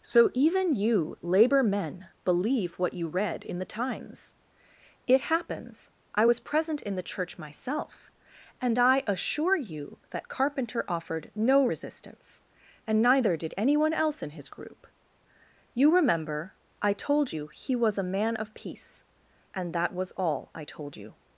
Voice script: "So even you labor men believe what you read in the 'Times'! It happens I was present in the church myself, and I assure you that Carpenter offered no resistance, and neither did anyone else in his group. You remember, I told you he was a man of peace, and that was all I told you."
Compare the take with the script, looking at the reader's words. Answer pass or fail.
pass